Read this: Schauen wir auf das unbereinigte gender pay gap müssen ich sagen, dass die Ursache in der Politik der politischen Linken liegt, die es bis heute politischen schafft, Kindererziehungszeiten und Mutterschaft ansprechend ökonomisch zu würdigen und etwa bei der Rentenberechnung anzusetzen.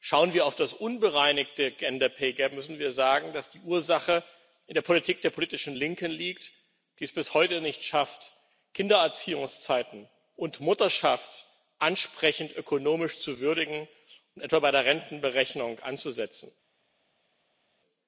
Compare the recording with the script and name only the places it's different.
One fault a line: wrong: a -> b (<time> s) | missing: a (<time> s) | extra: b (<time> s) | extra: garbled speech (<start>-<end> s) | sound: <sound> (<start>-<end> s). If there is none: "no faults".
wrong: ich -> wir (2.8 s)
wrong: politischen -> nicht (7.6 s)